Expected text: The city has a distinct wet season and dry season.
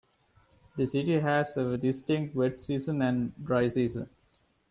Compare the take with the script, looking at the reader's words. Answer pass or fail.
pass